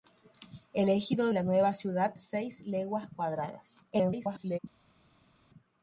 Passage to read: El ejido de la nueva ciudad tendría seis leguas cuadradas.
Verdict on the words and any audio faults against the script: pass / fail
fail